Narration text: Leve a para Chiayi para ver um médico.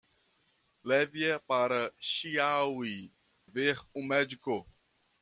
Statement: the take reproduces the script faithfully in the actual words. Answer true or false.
false